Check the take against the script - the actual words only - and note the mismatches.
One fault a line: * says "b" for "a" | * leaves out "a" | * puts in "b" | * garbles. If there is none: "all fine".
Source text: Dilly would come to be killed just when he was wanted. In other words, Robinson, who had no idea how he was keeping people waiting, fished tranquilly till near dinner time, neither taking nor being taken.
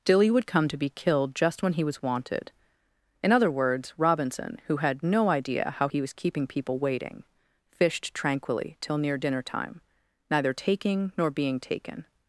all fine